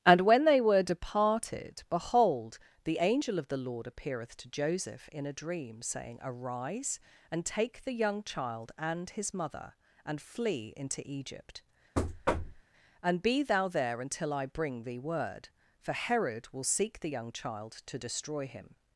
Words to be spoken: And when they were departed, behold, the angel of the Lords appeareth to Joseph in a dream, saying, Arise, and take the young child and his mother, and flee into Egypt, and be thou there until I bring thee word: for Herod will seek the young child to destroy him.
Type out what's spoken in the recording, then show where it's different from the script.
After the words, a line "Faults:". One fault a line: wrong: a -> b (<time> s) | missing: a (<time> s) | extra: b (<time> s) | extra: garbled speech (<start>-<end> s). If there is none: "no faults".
And when they were departed, behold, the angel of the Lord appeareth to Joseph in a dream, saying, Arise, and take the young child and his mother, and flee into Egypt, and be thou there until I bring thee word: for Herod will seek the young child to destroy him.
Faults:
wrong: Lords -> Lord (3.6 s)